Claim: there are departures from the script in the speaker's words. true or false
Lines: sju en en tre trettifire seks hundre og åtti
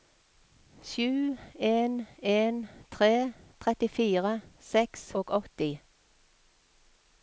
true